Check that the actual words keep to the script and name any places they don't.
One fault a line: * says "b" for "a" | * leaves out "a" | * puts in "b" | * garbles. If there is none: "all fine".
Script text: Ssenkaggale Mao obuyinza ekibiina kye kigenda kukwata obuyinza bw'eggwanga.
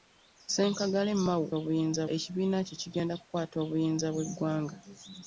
all fine